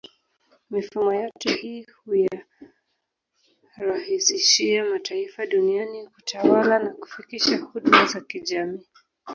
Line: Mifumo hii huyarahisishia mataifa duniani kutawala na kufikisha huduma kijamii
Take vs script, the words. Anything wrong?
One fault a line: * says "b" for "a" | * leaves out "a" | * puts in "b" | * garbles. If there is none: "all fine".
* puts in "yote"
* puts in "za"